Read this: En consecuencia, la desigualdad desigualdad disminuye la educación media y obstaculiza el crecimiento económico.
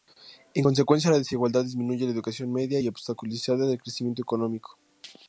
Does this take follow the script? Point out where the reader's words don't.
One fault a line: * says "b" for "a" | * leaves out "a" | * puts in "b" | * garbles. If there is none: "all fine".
* leaves out "desigualdad"